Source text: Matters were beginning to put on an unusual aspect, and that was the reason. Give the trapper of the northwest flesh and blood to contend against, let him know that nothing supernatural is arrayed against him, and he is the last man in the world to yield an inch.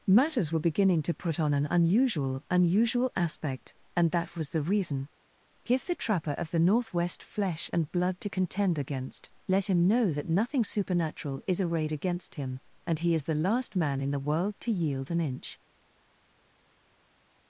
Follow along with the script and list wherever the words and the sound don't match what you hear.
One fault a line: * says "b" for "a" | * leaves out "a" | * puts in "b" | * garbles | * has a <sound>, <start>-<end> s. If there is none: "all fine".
* puts in "unusual"